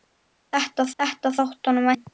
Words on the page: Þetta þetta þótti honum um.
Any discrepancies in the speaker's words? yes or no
no